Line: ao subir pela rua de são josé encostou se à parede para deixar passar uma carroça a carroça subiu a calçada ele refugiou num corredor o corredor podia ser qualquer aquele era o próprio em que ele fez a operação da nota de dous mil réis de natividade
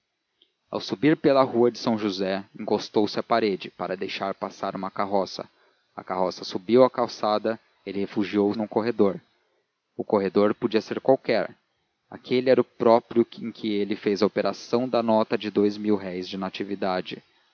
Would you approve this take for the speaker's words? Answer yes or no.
yes